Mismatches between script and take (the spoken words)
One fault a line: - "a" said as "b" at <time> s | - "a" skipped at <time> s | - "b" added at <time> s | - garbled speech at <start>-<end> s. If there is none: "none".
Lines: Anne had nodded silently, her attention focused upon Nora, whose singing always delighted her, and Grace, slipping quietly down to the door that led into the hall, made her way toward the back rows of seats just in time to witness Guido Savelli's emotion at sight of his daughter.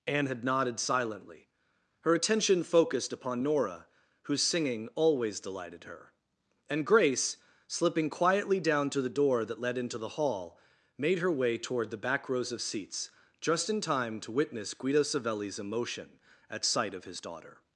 none